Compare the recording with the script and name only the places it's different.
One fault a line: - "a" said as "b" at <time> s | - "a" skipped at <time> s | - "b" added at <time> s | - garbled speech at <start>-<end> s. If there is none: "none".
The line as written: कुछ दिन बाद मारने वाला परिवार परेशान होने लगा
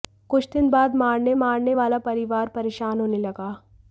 - "मारने" added at 1.4 s